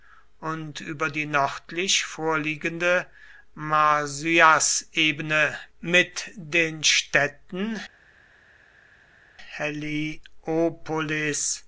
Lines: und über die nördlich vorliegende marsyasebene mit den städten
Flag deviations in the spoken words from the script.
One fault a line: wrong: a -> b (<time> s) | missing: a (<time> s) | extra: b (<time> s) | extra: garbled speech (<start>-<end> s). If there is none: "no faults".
no faults